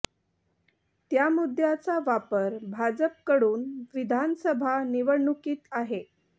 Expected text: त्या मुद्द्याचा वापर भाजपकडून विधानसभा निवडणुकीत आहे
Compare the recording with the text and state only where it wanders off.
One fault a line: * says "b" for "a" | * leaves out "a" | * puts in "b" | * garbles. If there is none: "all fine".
all fine